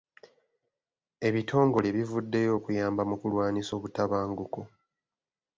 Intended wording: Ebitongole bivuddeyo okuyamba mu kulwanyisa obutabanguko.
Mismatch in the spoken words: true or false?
false